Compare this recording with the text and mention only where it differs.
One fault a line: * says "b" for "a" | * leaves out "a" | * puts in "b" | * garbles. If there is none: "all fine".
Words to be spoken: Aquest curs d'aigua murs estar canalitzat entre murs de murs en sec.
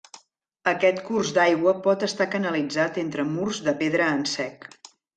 * says "pot" for "murs"
* says "pedra" for "murs"